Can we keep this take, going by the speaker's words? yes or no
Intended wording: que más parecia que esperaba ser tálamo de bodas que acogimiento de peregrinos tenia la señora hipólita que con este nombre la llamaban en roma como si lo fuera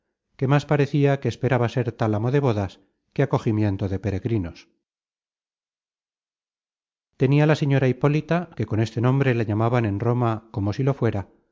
yes